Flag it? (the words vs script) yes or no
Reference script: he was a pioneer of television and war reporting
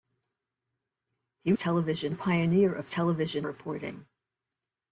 yes